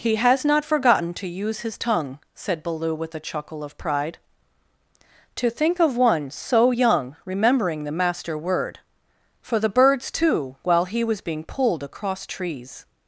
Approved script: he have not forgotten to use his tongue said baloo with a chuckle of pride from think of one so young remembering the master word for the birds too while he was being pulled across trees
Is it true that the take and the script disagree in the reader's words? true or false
true